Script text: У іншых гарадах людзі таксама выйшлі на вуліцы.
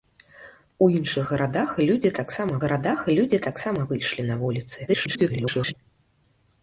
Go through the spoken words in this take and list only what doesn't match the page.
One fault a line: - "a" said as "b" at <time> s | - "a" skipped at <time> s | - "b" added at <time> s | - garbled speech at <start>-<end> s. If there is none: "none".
- "гарадах людзі таксама" added at 2.7 s
- garbled speech at 4.9-5.7 s